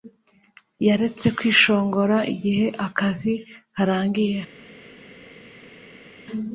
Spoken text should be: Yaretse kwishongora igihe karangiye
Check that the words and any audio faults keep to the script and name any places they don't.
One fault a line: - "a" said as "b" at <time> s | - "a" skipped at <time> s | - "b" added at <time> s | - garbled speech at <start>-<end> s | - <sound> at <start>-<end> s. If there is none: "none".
- "akazi" added at 2.9 s